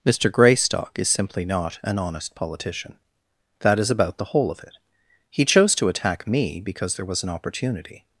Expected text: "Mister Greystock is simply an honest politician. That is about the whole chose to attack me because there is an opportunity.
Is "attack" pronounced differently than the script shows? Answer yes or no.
no